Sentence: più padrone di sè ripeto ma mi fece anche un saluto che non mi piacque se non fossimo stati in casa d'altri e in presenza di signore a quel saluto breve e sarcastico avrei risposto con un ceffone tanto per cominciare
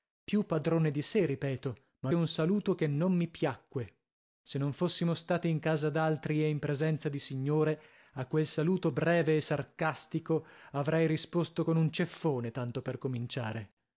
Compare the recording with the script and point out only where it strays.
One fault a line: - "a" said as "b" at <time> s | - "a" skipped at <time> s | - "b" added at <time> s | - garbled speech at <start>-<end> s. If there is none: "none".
- "mi fece anche" skipped at 2.1 s